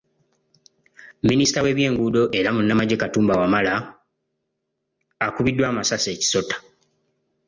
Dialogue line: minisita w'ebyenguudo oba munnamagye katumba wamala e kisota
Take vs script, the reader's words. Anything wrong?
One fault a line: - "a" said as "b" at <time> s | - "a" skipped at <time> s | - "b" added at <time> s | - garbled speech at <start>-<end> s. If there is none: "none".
- "oba" said as "era" at 2.4 s
- "akubiddwa amasasi" added at 5.2 s